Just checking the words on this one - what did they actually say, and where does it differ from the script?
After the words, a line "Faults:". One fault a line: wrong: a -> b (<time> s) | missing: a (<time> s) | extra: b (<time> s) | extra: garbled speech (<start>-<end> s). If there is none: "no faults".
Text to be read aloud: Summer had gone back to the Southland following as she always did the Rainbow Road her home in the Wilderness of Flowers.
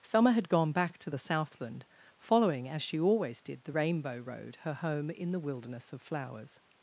Summer had gone back to the Southland following as she always did the Rainbow Road her home in the Wilderness of Flowers.
Faults:
no faults